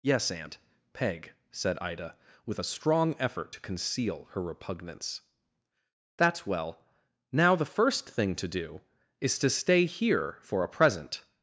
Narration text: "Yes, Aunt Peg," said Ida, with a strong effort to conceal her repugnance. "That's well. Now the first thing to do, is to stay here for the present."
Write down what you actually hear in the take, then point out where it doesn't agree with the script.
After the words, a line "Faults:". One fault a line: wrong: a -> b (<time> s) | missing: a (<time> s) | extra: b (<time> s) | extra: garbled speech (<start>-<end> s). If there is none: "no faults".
"Yes, Aunt Peg," said Ida, with a strong effort to conceal her repugnance. "That's well. Now the first thing to do, is to stay here for a present."
Faults:
wrong: the -> a (10.6 s)